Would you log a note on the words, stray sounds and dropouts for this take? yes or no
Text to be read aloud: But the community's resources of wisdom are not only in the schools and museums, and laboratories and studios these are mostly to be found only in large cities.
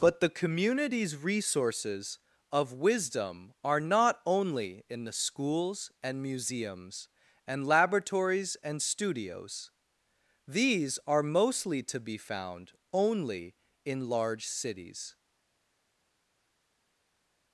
no